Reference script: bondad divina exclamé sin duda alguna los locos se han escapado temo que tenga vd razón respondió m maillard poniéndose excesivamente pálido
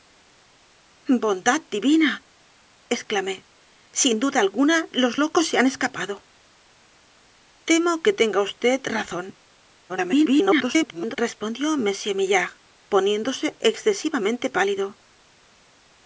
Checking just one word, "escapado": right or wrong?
right